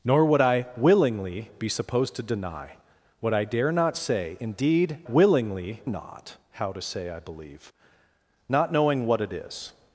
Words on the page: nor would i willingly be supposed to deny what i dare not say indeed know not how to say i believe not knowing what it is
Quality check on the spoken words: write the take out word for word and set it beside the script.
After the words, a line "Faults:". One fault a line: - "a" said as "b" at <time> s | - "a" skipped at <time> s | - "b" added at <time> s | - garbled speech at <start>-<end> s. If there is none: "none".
nor would i willingly be supposed to deny what i dare not say indeed willingly not how to say i believe not knowing what it is
Faults:
- "know" said as "willingly" at 5.1 s